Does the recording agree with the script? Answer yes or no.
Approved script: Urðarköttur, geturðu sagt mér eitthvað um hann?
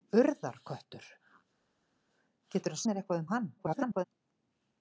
no